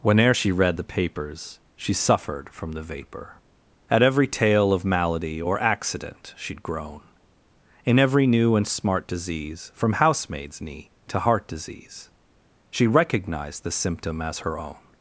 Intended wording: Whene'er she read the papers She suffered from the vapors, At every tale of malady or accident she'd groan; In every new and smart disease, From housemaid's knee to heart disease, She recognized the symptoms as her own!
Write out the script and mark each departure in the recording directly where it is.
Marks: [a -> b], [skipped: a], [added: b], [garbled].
Whene'er she read the papers She suffered from the [vapors, -> vapor] At every tale of malady or accident she'd groan; In every new and smart disease, From housemaid's knee to heart disease, She recognized the [symptoms -> symptom] as her own!